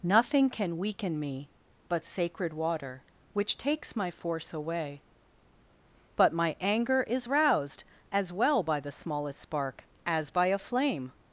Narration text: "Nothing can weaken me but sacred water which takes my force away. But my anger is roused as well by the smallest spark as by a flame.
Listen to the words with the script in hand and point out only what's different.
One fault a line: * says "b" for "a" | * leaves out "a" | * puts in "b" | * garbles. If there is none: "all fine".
all fine